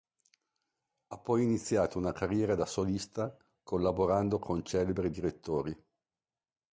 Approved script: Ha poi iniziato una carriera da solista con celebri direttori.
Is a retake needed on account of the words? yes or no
yes